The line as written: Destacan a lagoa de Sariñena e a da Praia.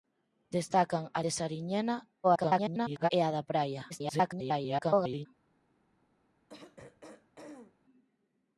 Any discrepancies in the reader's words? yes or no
yes